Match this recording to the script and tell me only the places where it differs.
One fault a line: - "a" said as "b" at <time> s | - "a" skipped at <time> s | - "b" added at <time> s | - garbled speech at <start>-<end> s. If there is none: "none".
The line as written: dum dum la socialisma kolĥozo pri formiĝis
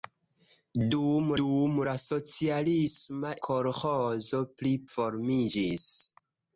none